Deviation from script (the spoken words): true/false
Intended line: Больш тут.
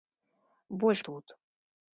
false